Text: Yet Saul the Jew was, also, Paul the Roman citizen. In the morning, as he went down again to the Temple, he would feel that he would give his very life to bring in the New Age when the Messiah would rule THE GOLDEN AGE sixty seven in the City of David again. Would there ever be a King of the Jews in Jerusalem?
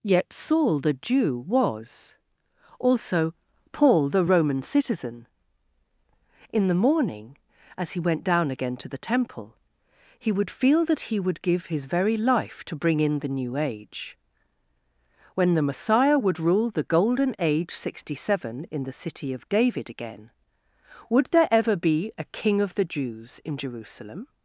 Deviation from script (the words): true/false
false